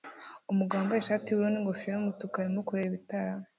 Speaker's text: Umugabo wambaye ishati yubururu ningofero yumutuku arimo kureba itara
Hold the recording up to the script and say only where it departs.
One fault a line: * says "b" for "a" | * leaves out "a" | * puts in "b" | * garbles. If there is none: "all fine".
all fine